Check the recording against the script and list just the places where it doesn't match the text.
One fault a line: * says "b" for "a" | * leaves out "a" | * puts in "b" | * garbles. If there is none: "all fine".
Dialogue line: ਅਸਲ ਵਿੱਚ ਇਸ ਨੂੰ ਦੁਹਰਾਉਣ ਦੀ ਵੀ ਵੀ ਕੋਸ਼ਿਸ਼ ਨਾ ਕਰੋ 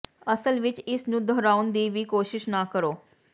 * leaves out "ਵੀ"